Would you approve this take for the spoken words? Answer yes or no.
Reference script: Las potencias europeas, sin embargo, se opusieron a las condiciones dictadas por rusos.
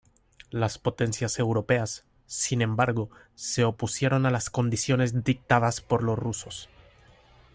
no